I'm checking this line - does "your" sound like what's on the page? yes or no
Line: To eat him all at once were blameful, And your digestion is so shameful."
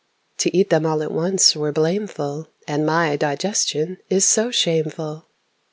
no